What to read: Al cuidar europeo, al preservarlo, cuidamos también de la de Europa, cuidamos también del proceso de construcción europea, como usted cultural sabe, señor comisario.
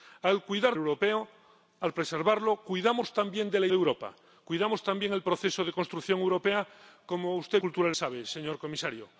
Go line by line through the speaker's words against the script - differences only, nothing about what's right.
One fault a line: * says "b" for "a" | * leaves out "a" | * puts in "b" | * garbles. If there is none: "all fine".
all fine